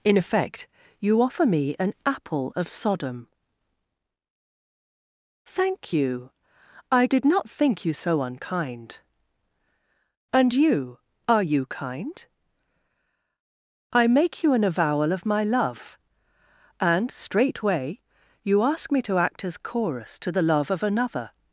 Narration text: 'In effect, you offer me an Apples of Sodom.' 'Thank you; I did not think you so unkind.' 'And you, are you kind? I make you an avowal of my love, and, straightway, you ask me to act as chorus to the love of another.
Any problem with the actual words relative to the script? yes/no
yes